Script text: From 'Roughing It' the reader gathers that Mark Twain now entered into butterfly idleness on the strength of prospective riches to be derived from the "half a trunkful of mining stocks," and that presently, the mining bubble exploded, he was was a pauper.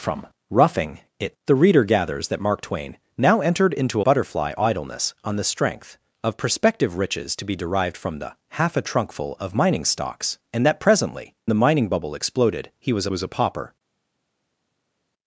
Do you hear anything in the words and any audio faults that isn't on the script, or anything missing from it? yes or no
no